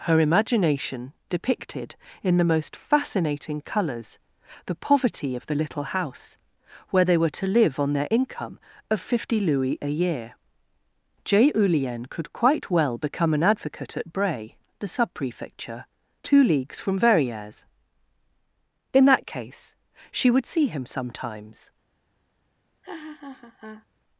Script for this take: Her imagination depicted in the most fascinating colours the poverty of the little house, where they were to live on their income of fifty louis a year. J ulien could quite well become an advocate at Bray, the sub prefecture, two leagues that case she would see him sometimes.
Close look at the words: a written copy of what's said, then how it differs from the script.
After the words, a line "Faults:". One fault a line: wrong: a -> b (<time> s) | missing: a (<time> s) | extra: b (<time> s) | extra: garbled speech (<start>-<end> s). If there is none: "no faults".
Her imagination depicted in the most fascinating colours the poverty of the little house, where they were to live on their income of fifty louis a year. J ulien could quite well become an advocate at Bray, the sub prefecture, two leagues from Verrieres. In that case she would see him sometimes.
Faults:
extra: from Verrieres In (16.8 s)